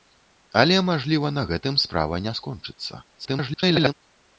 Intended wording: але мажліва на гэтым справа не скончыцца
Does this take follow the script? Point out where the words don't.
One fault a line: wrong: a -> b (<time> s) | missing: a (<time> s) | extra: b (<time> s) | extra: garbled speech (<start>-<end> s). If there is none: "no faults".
extra: garbled speech (3.1-3.9 s)